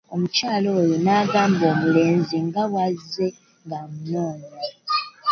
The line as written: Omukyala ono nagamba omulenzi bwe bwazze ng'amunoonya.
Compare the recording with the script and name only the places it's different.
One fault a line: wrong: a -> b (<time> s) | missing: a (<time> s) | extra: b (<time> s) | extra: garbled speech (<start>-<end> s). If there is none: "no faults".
wrong: ono -> oyo (0.8 s)
wrong: bwe -> nga (2.5 s)